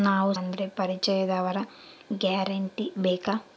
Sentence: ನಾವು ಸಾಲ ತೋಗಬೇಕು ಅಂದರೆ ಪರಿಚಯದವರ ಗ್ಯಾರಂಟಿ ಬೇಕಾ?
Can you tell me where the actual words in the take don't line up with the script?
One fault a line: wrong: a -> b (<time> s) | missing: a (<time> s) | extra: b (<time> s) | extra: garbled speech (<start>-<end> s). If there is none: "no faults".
missing: ಸಾಲ ತೋಗಬೇಕು (0.3 s)